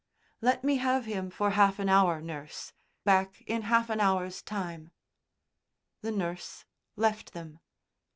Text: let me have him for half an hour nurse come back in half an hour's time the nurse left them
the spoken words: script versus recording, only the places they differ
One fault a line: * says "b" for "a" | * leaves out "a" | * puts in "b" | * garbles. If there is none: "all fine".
* leaves out "come"